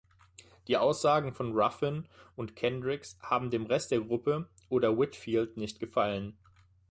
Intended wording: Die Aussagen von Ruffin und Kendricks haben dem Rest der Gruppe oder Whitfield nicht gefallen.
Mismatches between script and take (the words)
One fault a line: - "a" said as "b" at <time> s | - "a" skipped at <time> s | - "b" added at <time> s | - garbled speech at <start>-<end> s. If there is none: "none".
none